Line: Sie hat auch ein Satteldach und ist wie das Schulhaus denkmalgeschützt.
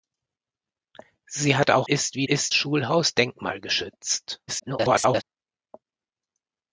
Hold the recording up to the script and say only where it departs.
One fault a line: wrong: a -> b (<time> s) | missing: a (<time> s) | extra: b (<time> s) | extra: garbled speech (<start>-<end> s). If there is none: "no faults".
missing: ein Satteldach und (1.9 s)
wrong: das -> ist (2.3 s)
extra: garbled speech (4.5-5.2 s)